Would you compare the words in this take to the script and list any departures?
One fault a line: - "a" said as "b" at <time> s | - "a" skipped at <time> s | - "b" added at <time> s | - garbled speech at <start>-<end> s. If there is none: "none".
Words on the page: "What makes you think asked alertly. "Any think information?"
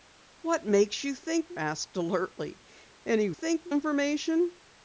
none